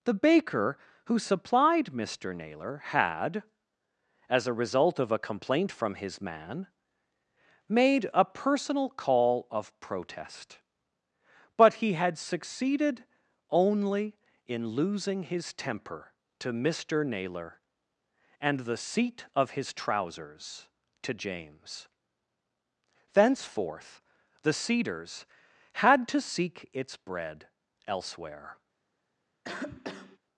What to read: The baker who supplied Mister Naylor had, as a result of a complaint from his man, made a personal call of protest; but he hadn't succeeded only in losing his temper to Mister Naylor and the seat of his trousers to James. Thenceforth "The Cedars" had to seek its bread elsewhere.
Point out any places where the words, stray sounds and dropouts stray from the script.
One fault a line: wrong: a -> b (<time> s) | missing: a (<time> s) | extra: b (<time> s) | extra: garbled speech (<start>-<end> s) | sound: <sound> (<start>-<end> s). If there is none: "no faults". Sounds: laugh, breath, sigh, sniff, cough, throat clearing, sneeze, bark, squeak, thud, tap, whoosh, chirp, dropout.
wrong: hadn't -> had (11.9 s)
sound: cough (29.4-30.2 s)